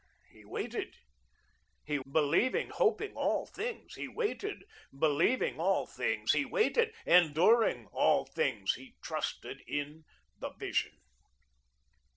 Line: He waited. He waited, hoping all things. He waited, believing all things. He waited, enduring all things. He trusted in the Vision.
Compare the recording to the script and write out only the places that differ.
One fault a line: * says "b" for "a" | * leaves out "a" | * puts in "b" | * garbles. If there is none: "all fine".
* says "believing" for "waited"